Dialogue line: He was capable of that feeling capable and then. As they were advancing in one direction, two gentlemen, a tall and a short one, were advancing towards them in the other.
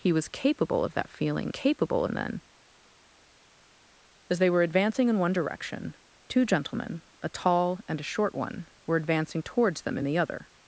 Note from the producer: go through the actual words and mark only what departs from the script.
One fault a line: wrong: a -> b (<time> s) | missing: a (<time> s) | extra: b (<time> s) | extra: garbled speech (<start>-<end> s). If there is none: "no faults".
no faults